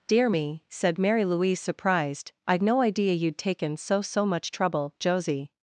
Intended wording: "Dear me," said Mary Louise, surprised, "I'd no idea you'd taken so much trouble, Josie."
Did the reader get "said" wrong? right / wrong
right